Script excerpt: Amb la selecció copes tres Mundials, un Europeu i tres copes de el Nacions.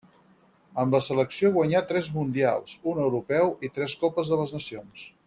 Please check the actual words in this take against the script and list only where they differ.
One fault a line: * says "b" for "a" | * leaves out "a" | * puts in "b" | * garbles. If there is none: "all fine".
* says "guanyà" for "copes"
* says "les" for "el"